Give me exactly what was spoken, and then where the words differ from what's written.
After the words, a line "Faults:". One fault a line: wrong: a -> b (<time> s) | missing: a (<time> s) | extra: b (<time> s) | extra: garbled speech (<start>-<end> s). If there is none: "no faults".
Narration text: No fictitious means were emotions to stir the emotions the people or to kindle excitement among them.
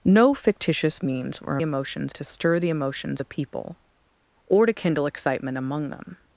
No fictitious means were emotions to stir the emotions the people or to kindle excitement among them.
Faults:
no faults